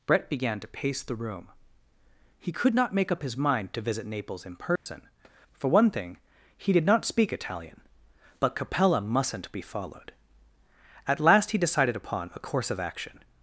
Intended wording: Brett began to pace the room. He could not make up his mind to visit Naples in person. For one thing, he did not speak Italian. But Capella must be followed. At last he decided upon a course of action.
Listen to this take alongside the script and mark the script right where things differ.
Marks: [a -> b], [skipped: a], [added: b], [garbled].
Brett began to pace the room. He could not make up his mind to visit Naples in person. For one thing, he did not speak Italian. But Capella [must -> mustn't] be followed. At last he decided upon a course of action.